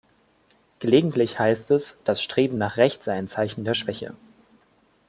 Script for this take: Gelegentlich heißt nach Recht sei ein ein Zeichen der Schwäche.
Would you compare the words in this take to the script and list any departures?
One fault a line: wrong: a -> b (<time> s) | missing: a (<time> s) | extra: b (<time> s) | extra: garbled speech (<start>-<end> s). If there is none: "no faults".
extra: es das Streben (1.7 s)
missing: ein (3.3 s)